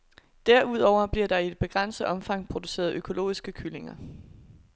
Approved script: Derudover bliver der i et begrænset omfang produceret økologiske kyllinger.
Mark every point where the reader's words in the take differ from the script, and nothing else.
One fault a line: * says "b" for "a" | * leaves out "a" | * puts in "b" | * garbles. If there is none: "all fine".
all fine